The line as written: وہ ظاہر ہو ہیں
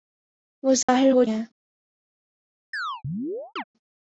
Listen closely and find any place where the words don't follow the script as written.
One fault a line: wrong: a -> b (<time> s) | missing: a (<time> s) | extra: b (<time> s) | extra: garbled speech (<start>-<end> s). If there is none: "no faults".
no faults